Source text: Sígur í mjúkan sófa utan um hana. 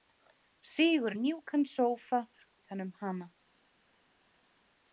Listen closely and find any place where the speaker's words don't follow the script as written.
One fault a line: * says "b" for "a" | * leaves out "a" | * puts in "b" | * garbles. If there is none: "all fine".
all fine